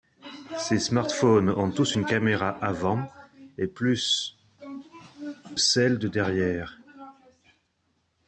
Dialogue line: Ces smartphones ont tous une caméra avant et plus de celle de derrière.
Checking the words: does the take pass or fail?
fail